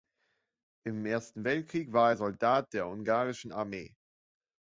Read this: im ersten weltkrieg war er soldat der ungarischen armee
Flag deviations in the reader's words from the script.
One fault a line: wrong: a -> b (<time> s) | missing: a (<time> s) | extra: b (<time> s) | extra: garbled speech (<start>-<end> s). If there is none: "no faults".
no faults